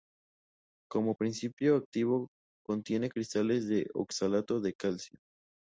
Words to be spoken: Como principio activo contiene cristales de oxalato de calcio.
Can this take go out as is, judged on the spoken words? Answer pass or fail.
pass